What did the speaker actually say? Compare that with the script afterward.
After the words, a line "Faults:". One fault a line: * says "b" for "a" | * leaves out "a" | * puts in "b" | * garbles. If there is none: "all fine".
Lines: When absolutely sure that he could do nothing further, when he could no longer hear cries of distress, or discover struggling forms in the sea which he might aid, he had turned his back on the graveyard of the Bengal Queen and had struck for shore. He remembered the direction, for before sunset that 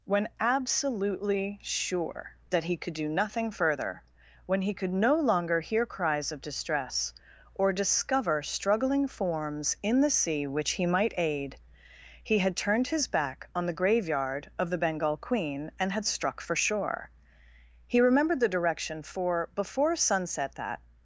When absolutely sure that he could do nothing further, when he could no longer hear cries of distress, or discover struggling forms in the sea which he might aid, he had turned his back on the graveyard of the Bengal Queen and had struck for shore. He remembered the direction, for before sunset that
Faults:
all fine